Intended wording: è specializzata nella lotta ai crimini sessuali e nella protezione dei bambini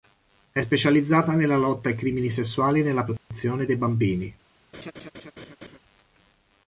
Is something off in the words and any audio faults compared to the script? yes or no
yes